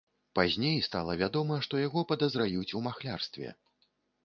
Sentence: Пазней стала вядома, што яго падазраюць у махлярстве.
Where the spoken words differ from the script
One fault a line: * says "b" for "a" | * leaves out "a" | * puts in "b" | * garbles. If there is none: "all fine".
all fine